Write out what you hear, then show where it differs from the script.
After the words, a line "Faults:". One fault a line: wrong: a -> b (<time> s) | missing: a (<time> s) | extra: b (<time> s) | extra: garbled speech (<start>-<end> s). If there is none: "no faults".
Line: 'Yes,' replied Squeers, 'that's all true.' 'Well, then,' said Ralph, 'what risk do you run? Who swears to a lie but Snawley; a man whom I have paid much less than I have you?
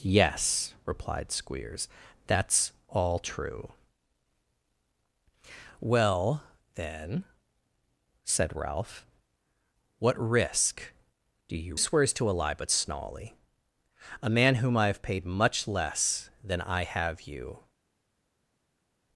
'Yes,' replied Squeers, 'that's all true.' 'Well, then,' said Ralph, 'what risk do you swears to a lie but Snawley; a man whom I have paid much less than I have you?
Faults:
missing: run Who (11.8 s)